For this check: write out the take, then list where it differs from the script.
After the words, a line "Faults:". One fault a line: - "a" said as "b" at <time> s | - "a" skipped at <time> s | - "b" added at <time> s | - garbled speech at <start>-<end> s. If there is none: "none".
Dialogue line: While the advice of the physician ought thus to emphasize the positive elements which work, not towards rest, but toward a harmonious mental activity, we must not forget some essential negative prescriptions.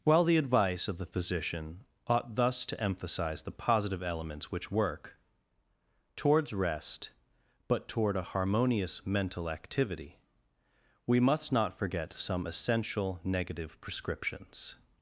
While the advice of the physician ought thus to emphasize the positive elements which work, towards rest, but toward a harmonious mental activity, we must not forget some essential negative prescriptions.
Faults:
- "not" skipped at 5.2 s